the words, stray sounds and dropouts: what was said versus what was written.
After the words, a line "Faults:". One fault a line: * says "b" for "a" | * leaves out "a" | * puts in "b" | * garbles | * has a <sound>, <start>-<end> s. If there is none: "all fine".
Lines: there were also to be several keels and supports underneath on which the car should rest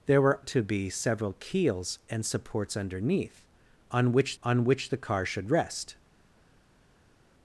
there were to be several keels and supports underneath on which on which the car should rest
Faults:
* leaves out "also"
* puts in "on which"